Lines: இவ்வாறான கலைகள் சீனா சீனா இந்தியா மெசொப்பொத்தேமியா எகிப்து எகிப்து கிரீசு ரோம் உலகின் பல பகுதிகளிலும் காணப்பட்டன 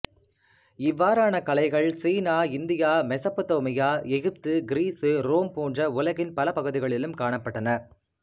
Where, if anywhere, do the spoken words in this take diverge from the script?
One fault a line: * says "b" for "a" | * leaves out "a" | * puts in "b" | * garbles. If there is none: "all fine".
* leaves out "சீனா"
* leaves out "எகிப்து"
* puts in "போன்ற"